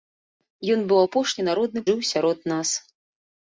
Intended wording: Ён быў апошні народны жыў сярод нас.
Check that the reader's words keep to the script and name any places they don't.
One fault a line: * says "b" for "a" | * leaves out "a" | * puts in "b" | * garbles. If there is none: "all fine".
all fine